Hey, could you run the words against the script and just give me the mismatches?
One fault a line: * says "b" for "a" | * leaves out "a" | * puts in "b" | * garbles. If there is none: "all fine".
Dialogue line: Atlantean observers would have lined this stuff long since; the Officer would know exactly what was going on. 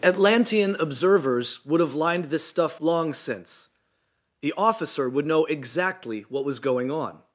all fine